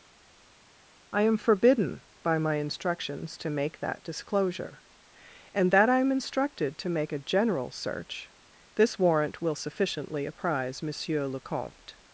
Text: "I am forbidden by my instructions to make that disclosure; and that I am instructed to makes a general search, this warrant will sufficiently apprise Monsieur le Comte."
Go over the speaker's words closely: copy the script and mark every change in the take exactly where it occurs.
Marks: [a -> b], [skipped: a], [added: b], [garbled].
"I am forbidden by my instructions to make that disclosure; and that I am instructed to [makes -> make] a general search, this warrant will sufficiently apprise Monsieur le Comte."